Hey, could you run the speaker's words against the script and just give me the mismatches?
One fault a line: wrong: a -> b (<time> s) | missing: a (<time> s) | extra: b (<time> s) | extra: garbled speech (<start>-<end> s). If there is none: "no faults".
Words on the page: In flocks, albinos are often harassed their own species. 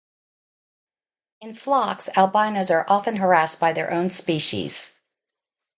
extra: by (3.6 s)